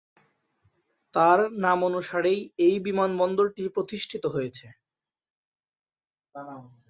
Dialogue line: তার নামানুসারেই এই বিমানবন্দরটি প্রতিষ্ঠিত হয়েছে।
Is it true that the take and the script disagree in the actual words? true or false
false